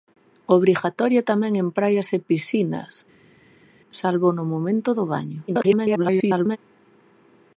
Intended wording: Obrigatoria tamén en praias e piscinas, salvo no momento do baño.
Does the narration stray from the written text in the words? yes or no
yes